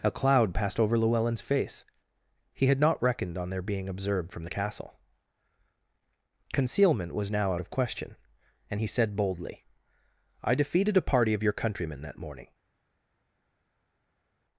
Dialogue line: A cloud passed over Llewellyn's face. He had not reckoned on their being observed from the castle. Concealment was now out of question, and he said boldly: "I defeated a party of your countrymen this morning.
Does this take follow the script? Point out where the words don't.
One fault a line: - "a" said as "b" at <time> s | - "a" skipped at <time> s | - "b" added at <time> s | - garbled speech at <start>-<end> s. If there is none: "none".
- "this" said as "that" at 12.0 s